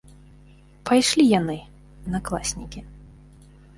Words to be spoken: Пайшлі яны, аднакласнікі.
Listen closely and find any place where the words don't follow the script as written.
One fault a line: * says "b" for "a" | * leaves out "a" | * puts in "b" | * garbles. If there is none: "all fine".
all fine